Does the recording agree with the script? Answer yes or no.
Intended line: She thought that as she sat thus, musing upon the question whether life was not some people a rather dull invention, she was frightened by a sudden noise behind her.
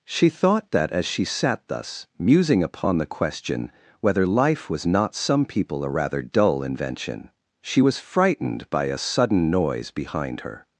yes